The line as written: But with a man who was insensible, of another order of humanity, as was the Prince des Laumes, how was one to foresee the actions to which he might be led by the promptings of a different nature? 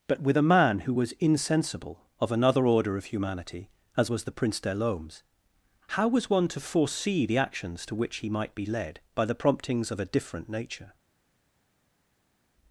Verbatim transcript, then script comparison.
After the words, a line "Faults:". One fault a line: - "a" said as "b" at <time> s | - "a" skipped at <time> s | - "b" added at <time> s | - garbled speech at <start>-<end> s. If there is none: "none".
But with a man who was insensible, of another order of humanity, as was the Prince des Laumes, how was one to foresee the actions to which he might be led by the promptings of a different nature?
Faults:
none